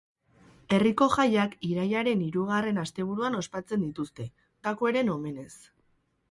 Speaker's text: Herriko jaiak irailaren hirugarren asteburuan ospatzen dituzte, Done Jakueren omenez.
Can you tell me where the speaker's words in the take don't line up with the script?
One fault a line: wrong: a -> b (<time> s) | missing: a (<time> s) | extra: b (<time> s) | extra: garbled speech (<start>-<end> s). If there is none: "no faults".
missing: Done (4.3 s)